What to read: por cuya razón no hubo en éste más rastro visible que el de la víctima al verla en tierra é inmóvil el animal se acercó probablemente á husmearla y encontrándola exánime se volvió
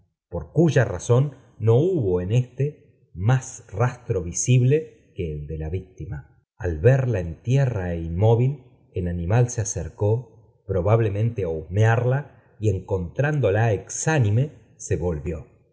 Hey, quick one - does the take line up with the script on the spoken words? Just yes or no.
yes